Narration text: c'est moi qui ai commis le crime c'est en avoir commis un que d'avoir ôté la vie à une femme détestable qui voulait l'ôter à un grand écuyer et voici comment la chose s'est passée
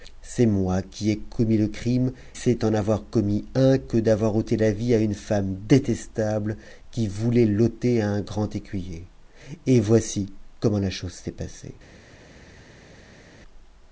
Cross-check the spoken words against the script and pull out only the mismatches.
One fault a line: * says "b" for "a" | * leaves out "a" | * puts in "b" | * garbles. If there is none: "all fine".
all fine